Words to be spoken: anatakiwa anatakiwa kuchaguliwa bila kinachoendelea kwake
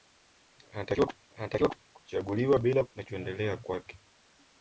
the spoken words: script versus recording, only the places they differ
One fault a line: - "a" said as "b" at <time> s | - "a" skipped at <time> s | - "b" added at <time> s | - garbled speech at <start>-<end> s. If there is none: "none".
none